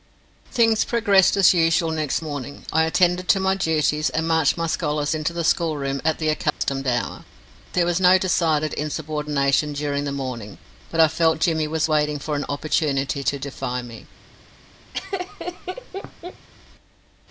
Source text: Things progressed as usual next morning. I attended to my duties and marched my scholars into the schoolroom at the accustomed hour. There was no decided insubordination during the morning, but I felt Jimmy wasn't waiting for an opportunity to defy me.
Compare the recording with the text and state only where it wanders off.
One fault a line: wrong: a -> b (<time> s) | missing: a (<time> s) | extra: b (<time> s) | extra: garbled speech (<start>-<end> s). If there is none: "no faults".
wrong: wasn't -> was (11.7 s)